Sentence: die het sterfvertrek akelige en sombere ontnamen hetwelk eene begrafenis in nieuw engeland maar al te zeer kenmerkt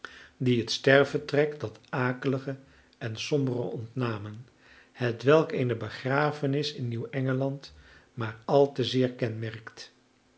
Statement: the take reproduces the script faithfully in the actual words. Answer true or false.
false